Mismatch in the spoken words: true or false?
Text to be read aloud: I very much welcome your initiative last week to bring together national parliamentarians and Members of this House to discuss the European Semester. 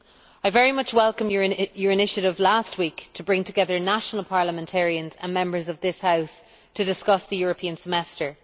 false